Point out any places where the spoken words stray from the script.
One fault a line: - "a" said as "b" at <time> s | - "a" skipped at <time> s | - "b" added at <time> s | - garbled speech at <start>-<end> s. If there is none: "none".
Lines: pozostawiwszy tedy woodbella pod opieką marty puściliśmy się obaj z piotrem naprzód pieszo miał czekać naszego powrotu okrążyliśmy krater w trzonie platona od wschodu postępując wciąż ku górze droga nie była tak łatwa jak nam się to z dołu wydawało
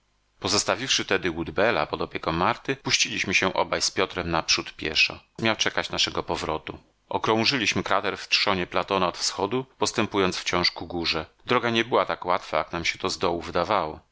none